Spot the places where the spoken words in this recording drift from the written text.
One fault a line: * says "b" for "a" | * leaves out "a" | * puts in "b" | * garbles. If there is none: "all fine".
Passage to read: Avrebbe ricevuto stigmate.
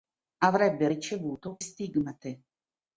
all fine